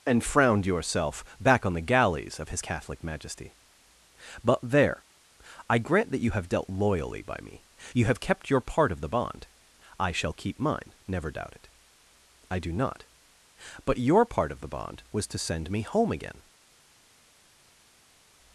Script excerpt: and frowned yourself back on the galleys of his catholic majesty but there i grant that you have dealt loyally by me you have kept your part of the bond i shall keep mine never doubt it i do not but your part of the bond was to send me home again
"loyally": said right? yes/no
yes